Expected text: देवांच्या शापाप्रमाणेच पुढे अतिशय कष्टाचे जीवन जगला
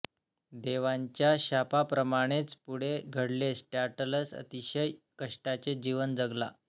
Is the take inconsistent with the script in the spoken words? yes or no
yes